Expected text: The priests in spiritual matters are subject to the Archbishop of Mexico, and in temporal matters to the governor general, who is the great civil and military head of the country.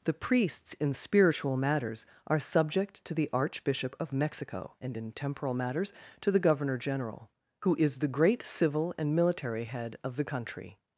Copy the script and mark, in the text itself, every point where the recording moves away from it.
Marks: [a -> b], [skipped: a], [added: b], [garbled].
The priests in spiritual matters are subject to the Archbishop of Mexico, and in temporal matters to the governor general, who is the great civil and military head of the country.